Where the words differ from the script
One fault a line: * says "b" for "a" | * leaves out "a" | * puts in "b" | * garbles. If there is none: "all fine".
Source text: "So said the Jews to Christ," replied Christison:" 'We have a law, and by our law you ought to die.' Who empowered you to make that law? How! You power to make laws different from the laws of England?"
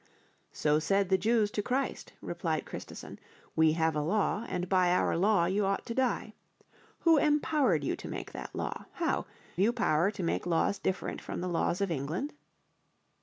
all fine